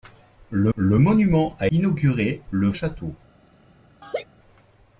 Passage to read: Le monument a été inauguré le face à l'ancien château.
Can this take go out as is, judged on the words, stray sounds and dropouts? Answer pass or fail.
fail